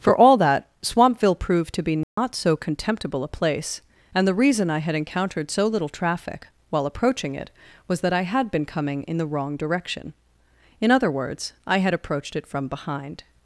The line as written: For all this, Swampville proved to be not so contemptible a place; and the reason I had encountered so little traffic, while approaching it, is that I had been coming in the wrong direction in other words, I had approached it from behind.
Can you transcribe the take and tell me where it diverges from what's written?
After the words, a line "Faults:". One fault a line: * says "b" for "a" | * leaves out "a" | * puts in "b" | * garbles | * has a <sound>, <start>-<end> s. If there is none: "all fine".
For all that, Swampville proved to be not so contemptible a place; and the reason I had encountered so little traffic, while approaching it, was that I had been coming in the wrong direction in other words, I had approached it from behind.
Faults:
* says "that" for "this"
* has a dropout, 2.0-2.2 s
* says "was" for "is"